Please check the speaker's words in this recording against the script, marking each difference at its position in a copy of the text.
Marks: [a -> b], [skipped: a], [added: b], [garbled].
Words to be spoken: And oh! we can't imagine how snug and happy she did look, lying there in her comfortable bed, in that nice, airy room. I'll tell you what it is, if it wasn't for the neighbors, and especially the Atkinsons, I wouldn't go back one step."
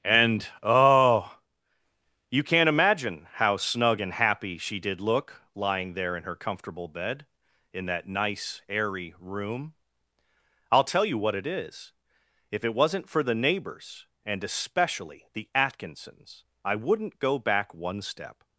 And oh! [we -> you] can't imagine how snug and happy she did look, lying there in her comfortable bed, in that nice, airy room. I'll tell you what it is, if it wasn't for the neighbors, and especially the Atkinsons, I wouldn't go back one step."